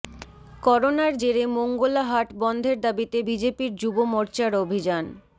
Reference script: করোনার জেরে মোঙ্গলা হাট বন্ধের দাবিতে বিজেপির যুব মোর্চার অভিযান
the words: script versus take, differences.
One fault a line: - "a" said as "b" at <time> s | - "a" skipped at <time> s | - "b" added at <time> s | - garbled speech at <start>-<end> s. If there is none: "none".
none